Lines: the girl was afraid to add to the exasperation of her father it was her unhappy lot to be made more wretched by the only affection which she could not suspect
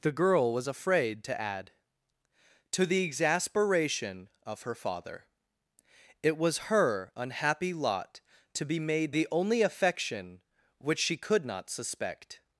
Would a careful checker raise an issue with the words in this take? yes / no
yes